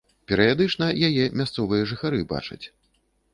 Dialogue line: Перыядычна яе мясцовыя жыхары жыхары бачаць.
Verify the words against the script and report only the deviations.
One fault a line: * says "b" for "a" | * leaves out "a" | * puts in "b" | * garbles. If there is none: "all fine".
* leaves out "жыхары"